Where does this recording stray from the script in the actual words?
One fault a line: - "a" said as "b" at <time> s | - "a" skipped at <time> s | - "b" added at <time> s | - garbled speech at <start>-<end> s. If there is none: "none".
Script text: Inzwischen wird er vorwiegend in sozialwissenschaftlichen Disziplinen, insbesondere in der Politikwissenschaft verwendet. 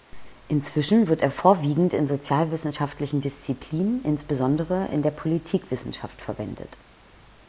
none